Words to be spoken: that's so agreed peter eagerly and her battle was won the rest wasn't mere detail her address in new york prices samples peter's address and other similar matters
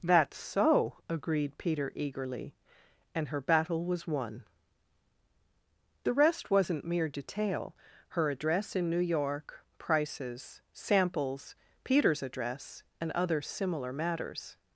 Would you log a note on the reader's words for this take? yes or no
no